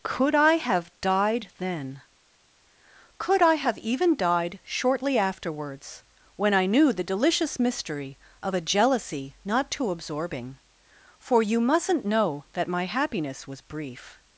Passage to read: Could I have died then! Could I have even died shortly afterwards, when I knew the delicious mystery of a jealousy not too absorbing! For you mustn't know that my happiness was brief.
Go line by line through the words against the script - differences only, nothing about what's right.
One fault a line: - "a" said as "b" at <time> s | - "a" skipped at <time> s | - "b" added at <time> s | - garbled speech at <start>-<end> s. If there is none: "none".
none